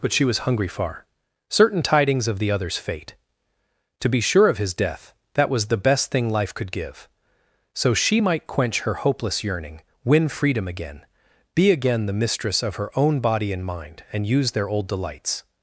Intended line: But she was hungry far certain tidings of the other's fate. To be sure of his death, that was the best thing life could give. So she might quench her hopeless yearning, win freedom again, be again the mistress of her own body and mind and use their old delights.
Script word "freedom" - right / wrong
right